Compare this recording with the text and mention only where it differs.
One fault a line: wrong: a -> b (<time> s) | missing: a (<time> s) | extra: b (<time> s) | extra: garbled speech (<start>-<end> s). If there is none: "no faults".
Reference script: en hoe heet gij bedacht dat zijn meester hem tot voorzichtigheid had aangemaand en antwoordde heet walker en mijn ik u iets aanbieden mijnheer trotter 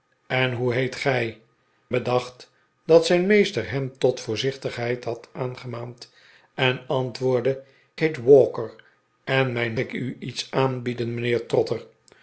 no faults